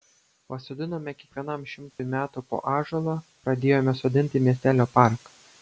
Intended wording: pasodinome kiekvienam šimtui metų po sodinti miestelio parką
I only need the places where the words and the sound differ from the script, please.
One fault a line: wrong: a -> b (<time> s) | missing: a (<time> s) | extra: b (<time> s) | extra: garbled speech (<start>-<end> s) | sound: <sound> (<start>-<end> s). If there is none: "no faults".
sound: dropout (1.9-2.0 s)
extra: ąžuolą pradėjome (2.7 s)